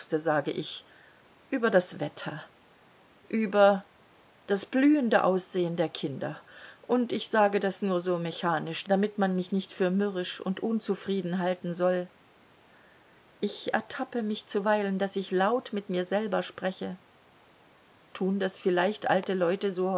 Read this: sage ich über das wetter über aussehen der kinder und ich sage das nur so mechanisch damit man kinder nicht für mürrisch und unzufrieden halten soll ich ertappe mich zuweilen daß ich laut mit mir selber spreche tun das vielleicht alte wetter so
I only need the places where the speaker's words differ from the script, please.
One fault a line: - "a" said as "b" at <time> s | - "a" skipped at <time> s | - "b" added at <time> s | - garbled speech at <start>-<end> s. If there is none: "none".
- "das blühende" added at 4.5 s
- "kinder" said as "mich" at 9.3 s
- "wetter" said as "leute" at 19.3 s